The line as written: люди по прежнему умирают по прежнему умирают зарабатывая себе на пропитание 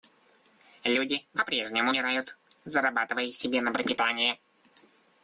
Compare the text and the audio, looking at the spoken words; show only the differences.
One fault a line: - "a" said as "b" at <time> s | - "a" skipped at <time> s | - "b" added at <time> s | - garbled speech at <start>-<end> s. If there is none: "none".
- "по прежнему умирают" skipped at 2.4 s